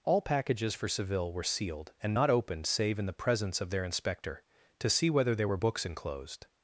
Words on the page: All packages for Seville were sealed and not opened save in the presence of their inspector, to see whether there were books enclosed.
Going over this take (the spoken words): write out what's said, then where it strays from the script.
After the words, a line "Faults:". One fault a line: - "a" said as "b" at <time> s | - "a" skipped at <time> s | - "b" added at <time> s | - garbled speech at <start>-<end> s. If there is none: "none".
All packages for Seville were sealed and not opened save in the presence of their inspector, to see whether there were books enclosed.
Faults:
none